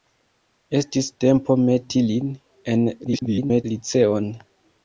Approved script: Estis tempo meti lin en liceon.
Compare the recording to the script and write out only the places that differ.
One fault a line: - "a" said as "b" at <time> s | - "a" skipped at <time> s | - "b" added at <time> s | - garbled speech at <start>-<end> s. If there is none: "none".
- garbled speech at 3.0-3.6 s